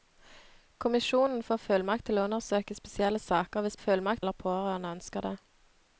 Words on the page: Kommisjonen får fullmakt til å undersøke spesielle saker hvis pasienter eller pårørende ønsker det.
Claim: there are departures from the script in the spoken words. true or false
true